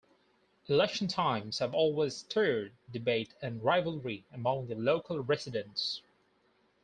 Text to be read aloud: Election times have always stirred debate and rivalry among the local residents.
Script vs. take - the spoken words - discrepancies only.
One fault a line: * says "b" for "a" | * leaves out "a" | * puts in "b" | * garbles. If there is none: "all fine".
all fine